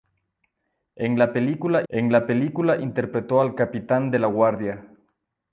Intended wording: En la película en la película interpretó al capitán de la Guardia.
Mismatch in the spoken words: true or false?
false